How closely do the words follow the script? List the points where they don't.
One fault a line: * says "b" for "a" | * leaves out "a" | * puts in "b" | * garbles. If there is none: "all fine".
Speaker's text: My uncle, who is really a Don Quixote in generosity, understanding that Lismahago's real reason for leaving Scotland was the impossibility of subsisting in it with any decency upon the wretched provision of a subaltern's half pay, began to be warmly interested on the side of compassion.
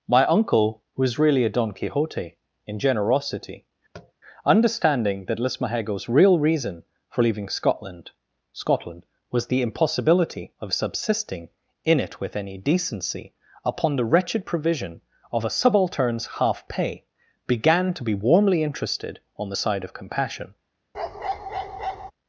* puts in "Scotland"